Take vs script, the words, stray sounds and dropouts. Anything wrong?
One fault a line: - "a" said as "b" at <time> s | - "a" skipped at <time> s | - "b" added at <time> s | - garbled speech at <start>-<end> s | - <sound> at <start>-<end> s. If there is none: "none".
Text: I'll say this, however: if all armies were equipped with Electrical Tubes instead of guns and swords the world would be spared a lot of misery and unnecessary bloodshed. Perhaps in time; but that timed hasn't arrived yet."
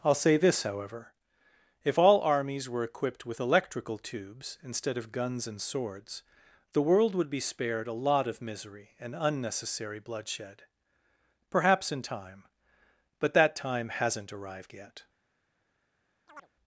- "timed" said as "time" at 13.6 s
- chirp at 16.3-16.5 s